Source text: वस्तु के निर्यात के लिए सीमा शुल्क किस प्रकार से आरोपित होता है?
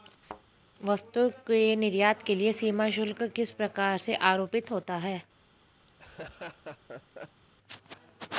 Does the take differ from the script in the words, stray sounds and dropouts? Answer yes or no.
yes